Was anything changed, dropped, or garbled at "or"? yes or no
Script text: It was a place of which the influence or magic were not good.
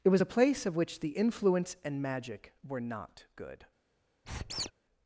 yes